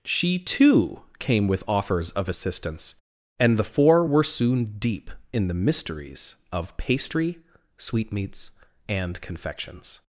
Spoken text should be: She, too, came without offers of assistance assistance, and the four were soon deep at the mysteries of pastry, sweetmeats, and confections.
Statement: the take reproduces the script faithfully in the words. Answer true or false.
false